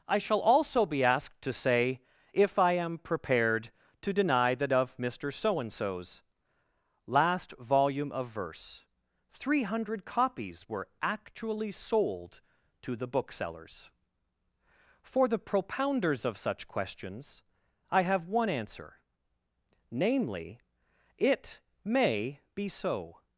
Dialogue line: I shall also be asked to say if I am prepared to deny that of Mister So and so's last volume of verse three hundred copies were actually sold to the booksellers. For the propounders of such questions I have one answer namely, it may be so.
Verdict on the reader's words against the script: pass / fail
pass